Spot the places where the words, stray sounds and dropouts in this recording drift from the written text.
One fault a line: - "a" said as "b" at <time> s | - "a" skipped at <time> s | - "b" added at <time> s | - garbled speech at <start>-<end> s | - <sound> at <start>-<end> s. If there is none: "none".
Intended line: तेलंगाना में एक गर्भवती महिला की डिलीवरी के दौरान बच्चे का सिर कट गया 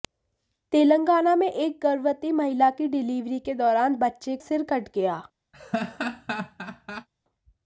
- "का" skipped at 4.4 s
- laugh at 5.5-7.1 s